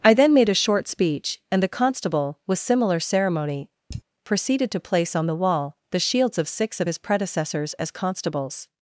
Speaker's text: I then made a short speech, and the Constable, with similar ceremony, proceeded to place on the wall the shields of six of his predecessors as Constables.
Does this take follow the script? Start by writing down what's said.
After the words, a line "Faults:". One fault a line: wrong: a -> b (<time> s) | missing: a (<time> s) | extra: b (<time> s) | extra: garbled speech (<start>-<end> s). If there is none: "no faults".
I then made a short speech, and the Constable, with similar ceremony, proceeded to place on the wall the shields of six of his predecessors as Constables.
Faults:
no faults